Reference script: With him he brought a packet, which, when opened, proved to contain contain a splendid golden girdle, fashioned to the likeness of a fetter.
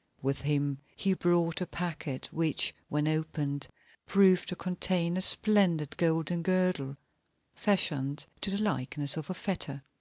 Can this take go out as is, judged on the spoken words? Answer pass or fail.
fail